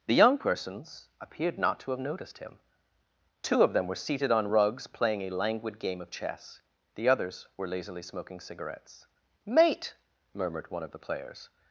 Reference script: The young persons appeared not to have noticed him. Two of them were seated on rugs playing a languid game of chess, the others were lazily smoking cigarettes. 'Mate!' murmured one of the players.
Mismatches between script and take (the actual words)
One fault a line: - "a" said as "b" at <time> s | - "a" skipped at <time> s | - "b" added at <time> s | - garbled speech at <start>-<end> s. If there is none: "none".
none